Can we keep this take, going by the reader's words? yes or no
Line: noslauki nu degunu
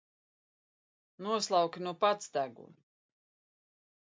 no